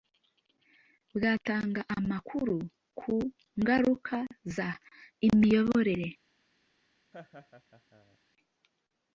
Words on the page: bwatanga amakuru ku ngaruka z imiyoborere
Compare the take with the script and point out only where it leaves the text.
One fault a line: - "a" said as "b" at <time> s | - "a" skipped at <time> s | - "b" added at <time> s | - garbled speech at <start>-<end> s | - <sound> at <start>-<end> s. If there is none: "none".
- laugh at 7.1-8.2 s